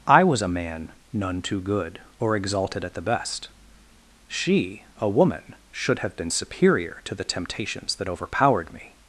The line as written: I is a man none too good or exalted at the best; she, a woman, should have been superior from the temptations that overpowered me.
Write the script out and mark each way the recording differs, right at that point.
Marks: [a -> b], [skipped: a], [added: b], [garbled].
I [is -> was] a man none too good or exalted at the best; she, a woman, should have been superior [from -> to] the temptations that overpowered me.